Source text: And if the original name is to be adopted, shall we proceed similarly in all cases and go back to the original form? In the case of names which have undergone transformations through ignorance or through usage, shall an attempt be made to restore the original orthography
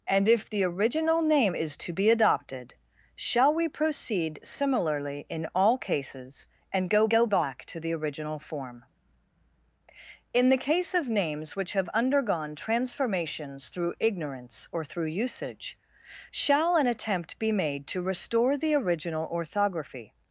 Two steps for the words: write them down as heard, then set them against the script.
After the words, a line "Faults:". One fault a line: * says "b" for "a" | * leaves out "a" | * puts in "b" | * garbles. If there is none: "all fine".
And if the original name is to be adopted, shall we proceed similarly in all cases and go go back to the original form? In the case of names which have undergone transformations through ignorance or through usage, shall an attempt be made to restore the original orthography
Faults:
* puts in "go"